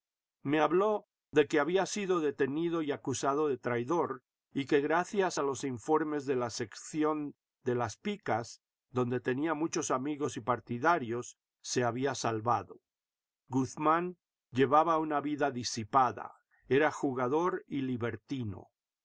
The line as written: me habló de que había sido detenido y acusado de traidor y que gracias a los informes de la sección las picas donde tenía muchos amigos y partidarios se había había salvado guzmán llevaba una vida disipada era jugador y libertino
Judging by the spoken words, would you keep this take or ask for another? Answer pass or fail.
fail